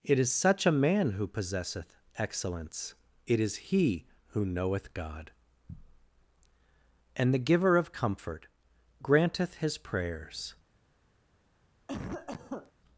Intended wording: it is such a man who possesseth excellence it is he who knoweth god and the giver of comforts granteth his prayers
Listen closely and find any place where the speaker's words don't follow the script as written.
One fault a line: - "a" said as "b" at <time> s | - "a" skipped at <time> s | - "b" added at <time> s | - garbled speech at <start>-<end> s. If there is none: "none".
- "comforts" said as "comfort" at 7.9 s